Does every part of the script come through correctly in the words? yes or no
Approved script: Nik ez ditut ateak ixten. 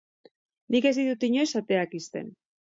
no